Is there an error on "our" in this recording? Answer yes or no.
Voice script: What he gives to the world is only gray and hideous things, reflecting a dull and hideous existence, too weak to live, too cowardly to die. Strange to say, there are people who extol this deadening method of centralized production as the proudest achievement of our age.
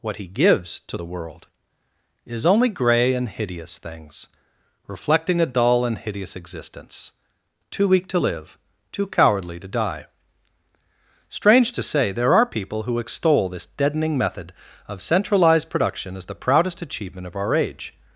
no